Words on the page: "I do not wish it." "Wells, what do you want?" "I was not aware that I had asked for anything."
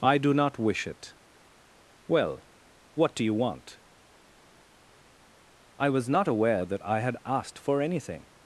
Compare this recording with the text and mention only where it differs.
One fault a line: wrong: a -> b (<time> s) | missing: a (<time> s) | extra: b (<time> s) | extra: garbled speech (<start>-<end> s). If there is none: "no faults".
wrong: Wells -> Well (2.1 s)